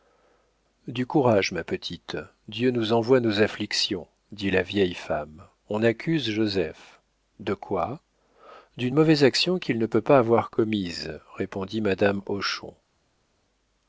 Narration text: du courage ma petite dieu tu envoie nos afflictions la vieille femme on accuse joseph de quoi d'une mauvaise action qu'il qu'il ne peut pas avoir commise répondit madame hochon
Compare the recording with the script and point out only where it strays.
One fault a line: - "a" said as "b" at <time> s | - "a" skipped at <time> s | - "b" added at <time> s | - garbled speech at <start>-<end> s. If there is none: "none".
- "tu" said as "nous" at 2.7 s
- "dit" added at 4.3 s
- "qu'il" skipped at 9.8 s